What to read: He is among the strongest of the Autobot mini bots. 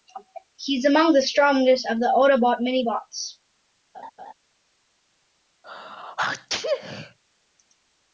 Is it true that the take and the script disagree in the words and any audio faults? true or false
true